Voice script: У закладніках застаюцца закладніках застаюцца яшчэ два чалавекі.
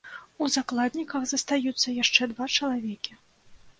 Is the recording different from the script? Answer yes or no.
yes